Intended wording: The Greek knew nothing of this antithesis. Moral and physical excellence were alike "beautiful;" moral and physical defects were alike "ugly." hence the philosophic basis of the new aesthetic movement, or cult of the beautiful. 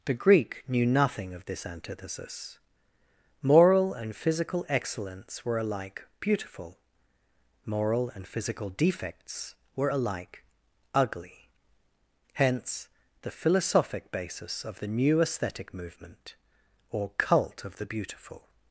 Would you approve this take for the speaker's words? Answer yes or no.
yes